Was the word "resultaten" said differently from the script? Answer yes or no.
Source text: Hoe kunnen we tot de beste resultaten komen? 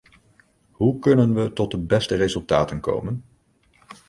no